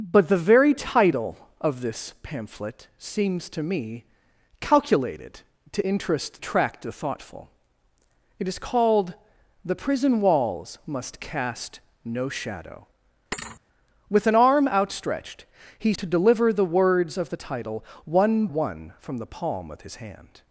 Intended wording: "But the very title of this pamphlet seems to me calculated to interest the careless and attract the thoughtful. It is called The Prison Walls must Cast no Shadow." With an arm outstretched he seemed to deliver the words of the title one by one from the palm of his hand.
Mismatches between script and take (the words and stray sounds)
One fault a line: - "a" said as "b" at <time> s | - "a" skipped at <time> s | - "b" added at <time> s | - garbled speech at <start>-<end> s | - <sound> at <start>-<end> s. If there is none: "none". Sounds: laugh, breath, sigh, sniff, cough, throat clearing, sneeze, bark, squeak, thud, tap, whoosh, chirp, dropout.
- "the careless and" skipped at 6.4 s
- thud at 13.3-13.6 s
- "seemed" skipped at 15.9 s
- "by" skipped at 18.5 s